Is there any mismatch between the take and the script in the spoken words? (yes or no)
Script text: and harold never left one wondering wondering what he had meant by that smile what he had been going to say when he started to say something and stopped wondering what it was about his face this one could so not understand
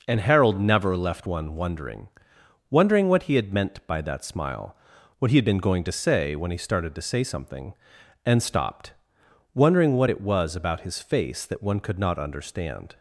yes